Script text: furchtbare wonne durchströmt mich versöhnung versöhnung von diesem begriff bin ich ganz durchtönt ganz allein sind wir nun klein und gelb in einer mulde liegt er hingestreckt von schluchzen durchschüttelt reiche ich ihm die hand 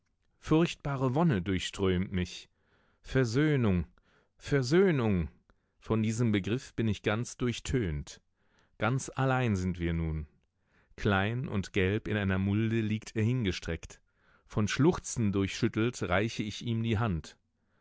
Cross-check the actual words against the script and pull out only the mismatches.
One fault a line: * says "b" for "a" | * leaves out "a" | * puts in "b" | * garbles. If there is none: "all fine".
all fine